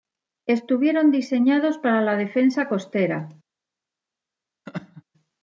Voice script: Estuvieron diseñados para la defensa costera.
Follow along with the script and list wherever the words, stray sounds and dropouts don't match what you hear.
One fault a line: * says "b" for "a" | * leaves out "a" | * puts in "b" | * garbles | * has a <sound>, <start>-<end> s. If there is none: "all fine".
* has a laugh, 4.7-5.0 s